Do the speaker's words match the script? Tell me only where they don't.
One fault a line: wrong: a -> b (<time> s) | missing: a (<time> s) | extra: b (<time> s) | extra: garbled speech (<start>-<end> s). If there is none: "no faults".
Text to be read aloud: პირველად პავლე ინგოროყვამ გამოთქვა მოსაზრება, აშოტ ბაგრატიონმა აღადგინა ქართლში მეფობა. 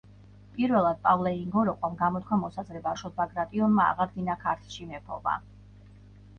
no faults